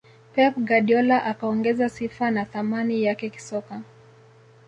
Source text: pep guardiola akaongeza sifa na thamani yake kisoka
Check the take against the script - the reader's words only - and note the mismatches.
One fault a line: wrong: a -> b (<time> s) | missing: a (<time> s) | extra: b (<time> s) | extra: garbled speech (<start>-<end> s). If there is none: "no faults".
no faults